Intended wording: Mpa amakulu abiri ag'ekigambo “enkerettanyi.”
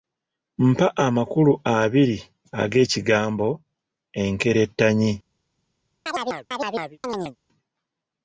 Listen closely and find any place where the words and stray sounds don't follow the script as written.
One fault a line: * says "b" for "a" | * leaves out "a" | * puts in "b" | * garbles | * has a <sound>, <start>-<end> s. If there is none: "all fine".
* has a chirp, 6.1-7.4 s